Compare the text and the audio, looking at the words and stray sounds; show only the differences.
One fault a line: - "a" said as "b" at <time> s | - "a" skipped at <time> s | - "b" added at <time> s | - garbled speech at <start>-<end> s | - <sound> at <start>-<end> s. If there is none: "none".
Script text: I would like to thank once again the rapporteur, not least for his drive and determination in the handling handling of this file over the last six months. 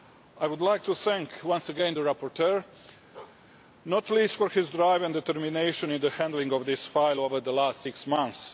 - bark at 3.1-3.4 s
- "handling" skipped at 6.5 s